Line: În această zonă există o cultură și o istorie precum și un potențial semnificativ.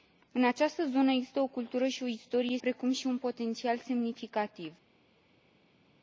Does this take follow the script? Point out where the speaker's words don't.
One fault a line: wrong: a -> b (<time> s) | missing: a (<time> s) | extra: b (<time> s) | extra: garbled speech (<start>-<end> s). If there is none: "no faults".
no faults